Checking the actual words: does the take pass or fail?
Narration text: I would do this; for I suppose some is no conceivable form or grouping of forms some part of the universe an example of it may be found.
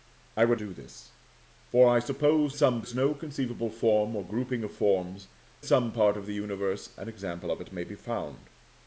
pass